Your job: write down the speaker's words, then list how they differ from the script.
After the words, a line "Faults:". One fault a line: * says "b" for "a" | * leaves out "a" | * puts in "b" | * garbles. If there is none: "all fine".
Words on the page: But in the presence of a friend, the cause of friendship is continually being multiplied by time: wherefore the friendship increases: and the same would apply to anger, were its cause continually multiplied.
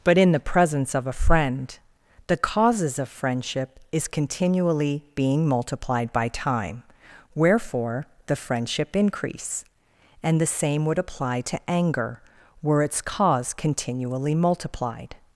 But in the presence of a friend, the causes of friendship is continually being multiplied by time: wherefore the friendship increase: and the same would apply to anger, were its cause continually multiplied.
Faults:
* says "causes" for "cause"
* says "increase" for "increases"